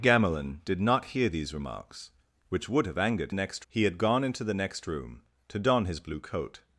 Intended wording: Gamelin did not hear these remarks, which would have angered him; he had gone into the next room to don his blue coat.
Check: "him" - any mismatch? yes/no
yes